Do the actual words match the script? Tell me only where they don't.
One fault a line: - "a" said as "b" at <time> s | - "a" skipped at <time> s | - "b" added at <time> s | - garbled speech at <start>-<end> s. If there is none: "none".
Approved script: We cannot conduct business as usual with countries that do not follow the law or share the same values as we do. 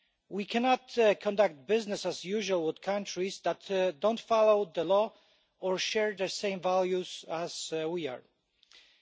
none